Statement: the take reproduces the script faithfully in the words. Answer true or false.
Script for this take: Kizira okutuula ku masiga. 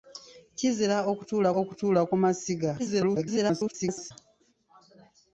false